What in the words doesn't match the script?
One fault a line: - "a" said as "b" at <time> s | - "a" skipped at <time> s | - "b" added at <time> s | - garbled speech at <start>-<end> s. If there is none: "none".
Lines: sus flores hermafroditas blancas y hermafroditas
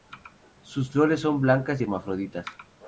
- "hermafroditas" said as "son" at 1.2 s